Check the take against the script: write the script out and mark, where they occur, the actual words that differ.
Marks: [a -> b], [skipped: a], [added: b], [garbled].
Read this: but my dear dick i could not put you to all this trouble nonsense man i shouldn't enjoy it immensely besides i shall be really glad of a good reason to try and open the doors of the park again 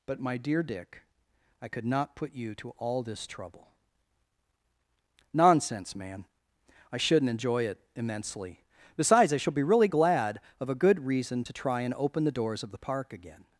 but my dear dick i could not put you to all this trouble nonsense man i shouldn't enjoy it immensely besides i shall be really glad of a good reason to try and open the doors of the park again